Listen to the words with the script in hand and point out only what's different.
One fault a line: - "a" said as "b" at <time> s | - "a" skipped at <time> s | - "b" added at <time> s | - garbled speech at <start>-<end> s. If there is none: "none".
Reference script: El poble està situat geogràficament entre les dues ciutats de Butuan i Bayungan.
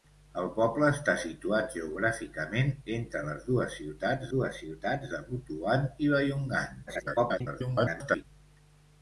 - "dues ciutats" added at 4.3 s
- garbled speech at 6.9-8.2 s